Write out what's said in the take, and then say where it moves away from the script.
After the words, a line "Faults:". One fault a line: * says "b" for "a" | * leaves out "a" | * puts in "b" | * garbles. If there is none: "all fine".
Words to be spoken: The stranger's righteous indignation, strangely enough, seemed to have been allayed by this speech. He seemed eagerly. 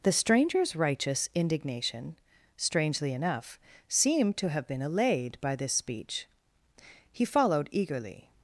The stranger's righteous indignation, strangely enough, seemed to have been allayed by this speech. He followed eagerly.
Faults:
* says "followed" for "seemed"